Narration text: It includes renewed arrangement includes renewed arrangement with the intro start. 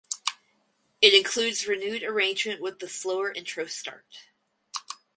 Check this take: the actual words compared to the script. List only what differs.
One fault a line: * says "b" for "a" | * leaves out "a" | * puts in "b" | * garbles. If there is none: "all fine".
* leaves out "includes renewed arrangement"
* puts in "slower"